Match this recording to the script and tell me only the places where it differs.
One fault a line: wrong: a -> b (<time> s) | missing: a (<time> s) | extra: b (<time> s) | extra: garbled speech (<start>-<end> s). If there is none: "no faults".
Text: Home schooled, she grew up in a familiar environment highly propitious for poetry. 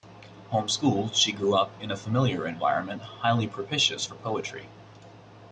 no faults